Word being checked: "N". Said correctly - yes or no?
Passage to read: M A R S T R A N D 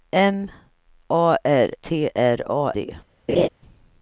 no